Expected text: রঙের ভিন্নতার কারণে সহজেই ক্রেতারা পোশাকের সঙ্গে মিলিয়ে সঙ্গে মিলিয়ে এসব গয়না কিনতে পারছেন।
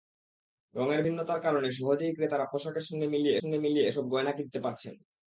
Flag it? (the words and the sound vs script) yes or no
no